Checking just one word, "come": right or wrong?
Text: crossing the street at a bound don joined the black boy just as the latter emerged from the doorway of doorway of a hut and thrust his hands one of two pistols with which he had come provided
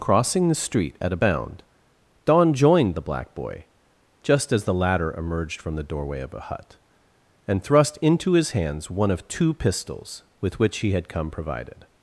right